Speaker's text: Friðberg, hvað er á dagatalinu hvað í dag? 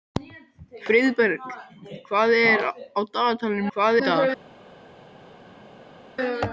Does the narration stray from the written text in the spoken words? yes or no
no